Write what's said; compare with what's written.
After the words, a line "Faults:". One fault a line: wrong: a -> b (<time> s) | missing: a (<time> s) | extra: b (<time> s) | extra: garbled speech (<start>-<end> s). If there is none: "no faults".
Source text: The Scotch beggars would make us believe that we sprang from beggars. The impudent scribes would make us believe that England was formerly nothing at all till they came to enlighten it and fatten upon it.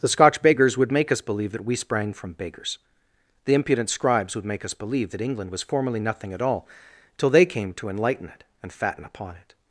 The Scotch beggars would make us believe that we sprang from beggars. The impudent scribes would make us believe that England was formerly nothing at all till they came to enlighten it and fatten upon it.
Faults:
no faults